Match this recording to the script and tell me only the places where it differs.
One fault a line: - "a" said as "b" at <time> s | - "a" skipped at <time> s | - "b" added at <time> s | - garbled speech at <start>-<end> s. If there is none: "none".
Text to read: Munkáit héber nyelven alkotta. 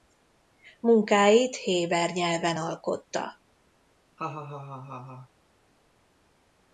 none